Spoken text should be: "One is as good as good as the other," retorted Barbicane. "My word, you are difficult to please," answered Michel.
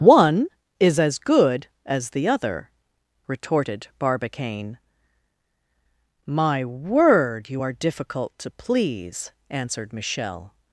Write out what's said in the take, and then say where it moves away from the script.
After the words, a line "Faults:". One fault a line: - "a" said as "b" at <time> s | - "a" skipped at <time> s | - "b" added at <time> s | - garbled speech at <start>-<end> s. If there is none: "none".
"One is as good as the other," retorted Barbicane. "My word, you are difficult to please," answered Michel.
Faults:
- "good as" skipped at 2.1 s